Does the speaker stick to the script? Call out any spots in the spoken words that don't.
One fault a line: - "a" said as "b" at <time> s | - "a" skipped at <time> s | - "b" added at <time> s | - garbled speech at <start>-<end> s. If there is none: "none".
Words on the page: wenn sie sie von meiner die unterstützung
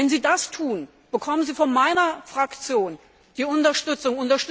- "das tun bekommen" added at 0.2 s
- "fraktion" added at 2.2 s